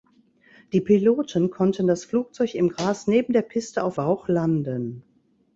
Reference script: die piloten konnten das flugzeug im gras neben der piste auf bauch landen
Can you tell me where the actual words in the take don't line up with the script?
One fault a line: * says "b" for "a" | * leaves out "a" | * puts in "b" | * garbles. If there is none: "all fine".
all fine